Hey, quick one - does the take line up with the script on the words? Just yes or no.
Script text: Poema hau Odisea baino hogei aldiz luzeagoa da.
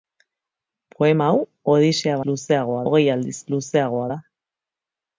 no